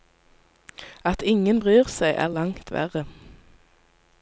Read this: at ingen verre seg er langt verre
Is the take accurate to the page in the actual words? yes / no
no